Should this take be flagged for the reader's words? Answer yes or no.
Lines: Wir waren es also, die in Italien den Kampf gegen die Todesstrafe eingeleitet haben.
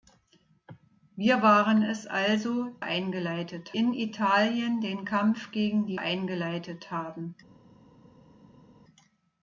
yes